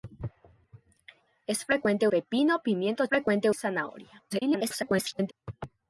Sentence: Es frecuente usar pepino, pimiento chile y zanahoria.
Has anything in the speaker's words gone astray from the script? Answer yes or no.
yes